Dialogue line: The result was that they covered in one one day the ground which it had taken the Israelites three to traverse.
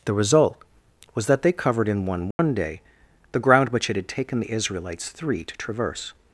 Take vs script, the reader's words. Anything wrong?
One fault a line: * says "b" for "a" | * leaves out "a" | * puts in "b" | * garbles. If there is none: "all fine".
all fine